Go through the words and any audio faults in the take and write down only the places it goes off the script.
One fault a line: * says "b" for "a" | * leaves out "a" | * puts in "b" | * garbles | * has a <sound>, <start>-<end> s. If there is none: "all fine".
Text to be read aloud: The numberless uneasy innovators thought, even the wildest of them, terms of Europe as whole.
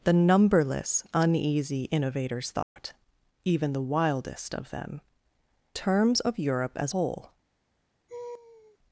* has a dropout, 2.6-2.8 s
* has a laugh, 8.1-8.8 s